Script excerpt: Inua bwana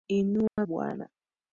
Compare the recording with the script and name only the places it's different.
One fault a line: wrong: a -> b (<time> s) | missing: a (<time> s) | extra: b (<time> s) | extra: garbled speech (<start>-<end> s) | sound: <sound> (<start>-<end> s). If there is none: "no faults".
sound: dropout (0.5-0.6 s)